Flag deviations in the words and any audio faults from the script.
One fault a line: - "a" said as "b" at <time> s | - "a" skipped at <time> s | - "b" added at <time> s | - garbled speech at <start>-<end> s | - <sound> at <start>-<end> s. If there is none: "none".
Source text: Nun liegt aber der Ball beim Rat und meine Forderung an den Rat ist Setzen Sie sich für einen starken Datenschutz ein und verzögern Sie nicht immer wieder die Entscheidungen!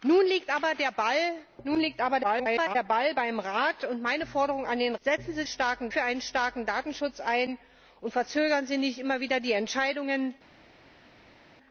- garbled speech at 2.2-2.8 s
- "Rat ist" skipped at 5.0 s
- "sich" said as "starken" at 5.4 s